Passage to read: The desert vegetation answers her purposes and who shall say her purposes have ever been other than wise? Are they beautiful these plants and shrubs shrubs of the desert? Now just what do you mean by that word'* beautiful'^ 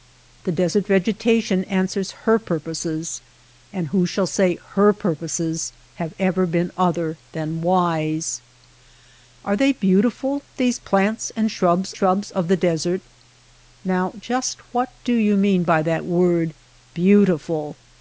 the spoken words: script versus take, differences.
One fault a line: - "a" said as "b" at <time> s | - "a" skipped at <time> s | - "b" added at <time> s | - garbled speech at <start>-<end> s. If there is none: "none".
none